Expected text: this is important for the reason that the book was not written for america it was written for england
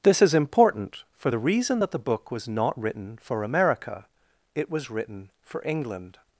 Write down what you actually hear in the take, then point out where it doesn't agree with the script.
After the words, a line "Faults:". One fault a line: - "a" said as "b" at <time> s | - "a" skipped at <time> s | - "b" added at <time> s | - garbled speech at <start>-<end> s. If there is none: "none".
this is important for the reason that the book was not written for america it was written for england
Faults:
none